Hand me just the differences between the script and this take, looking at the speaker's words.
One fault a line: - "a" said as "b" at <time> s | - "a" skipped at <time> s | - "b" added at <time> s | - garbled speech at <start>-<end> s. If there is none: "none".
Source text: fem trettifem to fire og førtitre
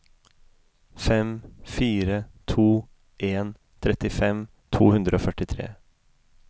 - "fire to en" added at 1.6 s
- "fire" said as "hundre" at 5.0 s